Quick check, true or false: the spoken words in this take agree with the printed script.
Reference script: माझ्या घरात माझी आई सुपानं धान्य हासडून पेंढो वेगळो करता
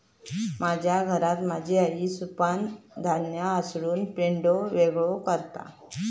true